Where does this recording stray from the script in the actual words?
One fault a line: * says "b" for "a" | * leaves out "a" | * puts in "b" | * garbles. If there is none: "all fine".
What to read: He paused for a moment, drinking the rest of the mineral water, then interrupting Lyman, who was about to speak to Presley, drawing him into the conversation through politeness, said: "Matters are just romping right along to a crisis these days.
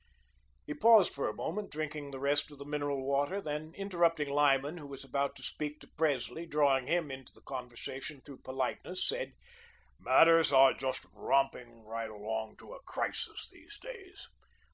all fine